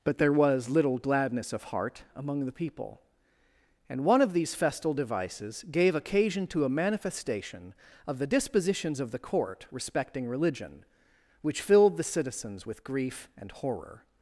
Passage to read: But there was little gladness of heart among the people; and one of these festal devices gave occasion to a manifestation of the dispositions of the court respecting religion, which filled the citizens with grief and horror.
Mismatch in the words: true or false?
false